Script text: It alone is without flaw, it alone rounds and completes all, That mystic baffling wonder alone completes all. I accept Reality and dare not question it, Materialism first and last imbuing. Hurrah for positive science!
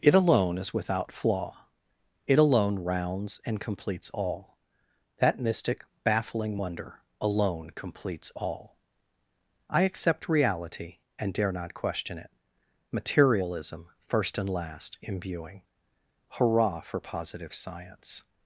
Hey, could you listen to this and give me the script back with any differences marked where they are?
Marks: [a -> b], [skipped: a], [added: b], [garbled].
It alone is without flaw, it alone rounds and completes all, That mystic baffling wonder alone completes all. I accept Reality and dare not question it, Materialism first and last imbuing. Hurrah for positive science!